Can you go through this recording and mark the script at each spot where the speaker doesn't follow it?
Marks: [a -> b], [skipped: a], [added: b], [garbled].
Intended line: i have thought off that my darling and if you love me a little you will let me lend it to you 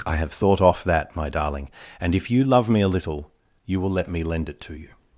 i have thought off that my darling and if you love me a little you will let me lend it to you